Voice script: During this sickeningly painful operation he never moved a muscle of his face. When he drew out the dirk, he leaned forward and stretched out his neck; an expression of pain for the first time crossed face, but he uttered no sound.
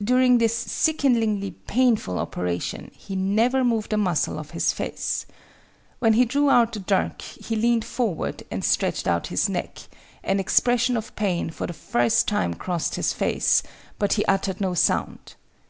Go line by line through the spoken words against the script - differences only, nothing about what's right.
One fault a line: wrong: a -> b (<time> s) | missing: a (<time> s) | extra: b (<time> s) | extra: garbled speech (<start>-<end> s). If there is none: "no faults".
extra: his (13.0 s)